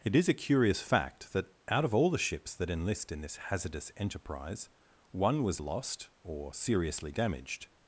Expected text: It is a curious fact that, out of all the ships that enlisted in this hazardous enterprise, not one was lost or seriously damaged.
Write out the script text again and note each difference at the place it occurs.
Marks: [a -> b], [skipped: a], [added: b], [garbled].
It is a curious fact that, out of all the ships that [enlisted -> enlist] in this hazardous enterprise, [skipped: not] one was lost or seriously damaged.